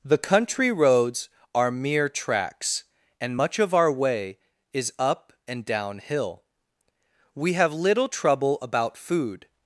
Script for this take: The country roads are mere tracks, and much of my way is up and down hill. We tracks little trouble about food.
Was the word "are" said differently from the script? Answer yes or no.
no